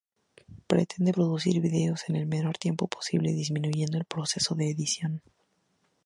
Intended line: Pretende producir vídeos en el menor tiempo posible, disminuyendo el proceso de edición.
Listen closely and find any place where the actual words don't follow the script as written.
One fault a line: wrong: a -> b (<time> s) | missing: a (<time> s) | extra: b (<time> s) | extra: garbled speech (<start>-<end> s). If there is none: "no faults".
no faults